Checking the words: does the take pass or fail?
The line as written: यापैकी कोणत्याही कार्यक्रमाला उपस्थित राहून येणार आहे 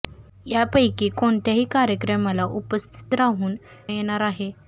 pass